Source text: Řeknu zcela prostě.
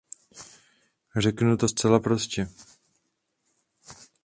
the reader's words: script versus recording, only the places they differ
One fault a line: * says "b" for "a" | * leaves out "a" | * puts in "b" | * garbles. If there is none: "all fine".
* puts in "to"